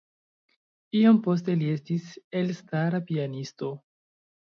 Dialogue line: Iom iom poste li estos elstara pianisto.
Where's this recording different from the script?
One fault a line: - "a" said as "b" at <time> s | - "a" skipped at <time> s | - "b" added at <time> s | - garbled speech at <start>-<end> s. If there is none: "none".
- "iom" skipped at 1.2 s
- "estos" said as "estis" at 1.7 s